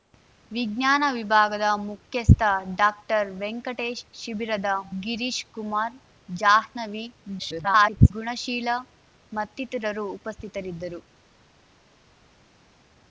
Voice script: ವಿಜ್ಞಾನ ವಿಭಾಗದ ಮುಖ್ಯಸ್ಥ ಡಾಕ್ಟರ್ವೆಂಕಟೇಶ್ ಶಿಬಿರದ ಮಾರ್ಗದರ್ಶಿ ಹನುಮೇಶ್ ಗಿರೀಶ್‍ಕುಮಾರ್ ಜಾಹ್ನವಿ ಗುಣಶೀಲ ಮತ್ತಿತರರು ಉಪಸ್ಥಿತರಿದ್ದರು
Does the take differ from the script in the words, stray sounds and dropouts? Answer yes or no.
yes